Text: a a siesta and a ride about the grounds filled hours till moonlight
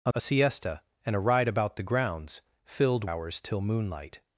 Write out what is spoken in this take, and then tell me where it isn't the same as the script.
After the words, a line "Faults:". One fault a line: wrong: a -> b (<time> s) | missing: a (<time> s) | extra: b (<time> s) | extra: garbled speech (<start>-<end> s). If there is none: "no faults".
a a siesta and a ride about the grounds filled hours till moonlight
Faults:
no faults